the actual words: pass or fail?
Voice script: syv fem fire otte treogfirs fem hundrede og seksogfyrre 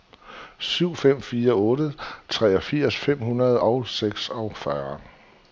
pass